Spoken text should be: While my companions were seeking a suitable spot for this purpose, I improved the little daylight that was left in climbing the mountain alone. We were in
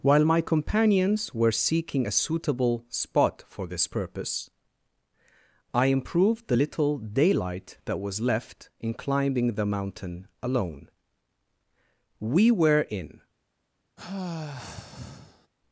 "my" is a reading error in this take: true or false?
false